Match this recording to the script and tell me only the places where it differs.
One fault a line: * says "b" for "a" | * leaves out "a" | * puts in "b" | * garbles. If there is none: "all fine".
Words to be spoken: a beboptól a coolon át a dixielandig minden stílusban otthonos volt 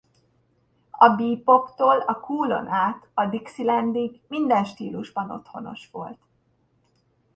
all fine